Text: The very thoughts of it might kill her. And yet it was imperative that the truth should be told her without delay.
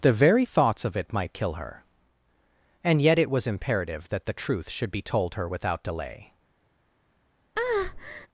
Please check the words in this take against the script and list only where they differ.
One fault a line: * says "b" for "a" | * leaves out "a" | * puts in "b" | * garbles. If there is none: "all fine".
all fine